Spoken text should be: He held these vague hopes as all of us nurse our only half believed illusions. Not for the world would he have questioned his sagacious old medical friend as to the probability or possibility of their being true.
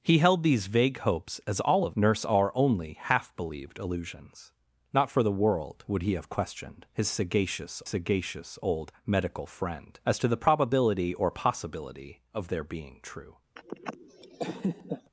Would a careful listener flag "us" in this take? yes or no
yes